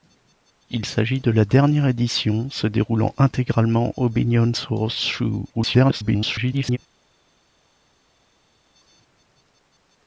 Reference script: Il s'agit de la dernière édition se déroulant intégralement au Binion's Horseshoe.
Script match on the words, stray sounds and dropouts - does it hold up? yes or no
no